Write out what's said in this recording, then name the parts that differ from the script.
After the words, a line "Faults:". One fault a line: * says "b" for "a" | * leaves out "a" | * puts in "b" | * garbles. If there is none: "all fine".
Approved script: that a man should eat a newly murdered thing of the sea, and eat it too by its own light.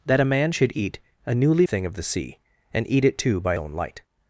that a man should eat a newly thing of the sea, and eat it too by own light.
Faults:
* leaves out "murdered"
* leaves out "its"